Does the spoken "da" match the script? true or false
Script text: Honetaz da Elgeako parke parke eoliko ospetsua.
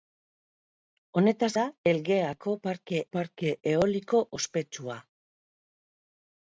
true